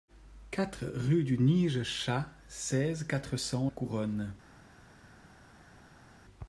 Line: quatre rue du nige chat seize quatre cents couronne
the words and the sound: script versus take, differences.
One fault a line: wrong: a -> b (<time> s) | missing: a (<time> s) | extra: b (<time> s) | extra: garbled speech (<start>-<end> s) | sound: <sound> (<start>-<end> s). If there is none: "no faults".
no faults